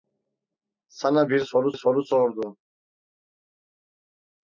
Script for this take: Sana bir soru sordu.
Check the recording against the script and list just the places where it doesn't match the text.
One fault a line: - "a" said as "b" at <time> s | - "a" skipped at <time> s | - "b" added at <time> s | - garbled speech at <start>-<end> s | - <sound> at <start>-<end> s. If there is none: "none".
- "soru" added at 1.7 s